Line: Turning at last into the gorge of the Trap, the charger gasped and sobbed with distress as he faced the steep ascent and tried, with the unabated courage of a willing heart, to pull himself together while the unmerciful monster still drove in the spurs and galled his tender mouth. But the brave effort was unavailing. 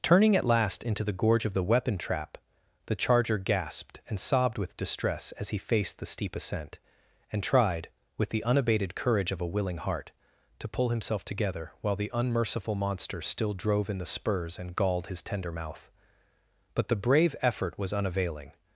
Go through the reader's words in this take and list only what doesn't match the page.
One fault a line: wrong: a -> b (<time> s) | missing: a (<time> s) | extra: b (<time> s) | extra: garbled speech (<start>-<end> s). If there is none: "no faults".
extra: weapon (1.6 s)